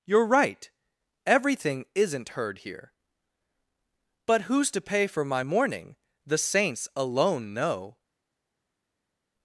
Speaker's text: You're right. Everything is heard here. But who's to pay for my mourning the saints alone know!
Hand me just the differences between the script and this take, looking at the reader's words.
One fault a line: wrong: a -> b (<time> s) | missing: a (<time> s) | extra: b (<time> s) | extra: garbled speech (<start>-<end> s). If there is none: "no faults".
wrong: is -> isn't (1.9 s)